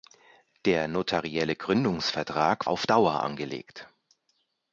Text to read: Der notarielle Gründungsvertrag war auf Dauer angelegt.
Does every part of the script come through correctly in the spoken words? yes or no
no